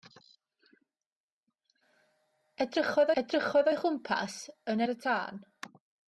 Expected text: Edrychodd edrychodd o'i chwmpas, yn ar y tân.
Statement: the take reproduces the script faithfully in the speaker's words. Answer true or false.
true